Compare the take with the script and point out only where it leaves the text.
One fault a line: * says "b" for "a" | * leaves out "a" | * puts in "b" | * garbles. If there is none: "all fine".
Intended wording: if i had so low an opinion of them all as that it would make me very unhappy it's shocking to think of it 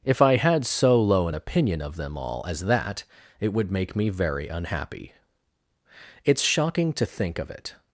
all fine